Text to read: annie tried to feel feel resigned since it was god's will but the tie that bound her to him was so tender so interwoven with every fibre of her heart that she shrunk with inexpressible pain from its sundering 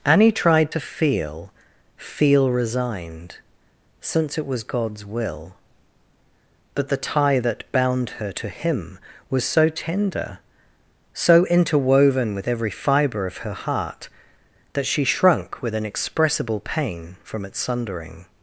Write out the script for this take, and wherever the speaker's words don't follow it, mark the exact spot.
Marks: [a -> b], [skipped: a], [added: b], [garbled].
annie tried to feel feel resigned since it was god's will but the tie that bound her to him was so tender so interwoven with every fibre of her heart that she shrunk with inexpressible pain from its sundering